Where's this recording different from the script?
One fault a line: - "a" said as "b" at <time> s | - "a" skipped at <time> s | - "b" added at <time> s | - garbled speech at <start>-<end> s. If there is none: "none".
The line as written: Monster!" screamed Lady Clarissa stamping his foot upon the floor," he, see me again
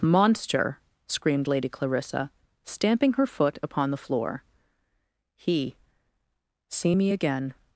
- "his" said as "her" at 3.1 s